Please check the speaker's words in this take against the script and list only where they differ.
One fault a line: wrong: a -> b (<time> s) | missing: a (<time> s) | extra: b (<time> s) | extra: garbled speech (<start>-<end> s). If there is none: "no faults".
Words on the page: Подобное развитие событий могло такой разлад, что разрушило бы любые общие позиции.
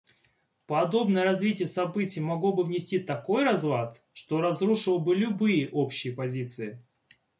extra: бы внести (2.5 s)